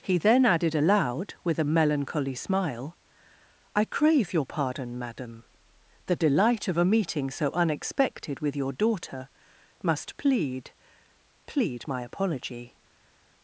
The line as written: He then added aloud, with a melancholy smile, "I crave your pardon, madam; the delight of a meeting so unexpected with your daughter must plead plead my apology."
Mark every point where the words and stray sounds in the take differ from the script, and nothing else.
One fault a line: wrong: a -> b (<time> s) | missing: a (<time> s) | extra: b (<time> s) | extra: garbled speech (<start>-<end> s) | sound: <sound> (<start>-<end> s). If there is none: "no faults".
no faults